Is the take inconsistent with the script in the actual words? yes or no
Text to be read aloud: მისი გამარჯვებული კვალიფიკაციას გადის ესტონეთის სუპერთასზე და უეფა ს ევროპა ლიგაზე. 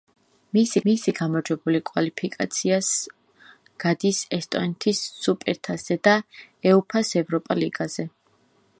yes